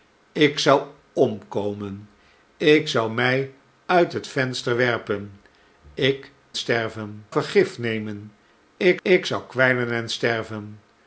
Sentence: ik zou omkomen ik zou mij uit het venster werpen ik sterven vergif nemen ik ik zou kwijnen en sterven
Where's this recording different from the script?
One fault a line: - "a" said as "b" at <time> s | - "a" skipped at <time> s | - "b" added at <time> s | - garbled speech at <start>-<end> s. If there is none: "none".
none